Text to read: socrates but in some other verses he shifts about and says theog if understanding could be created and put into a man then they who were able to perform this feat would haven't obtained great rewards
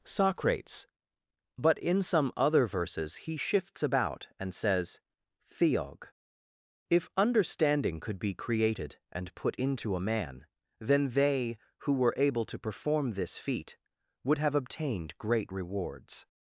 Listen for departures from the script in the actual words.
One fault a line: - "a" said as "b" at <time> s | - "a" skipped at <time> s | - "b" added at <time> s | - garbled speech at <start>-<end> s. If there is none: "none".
- "haven't" said as "have" at 14.4 s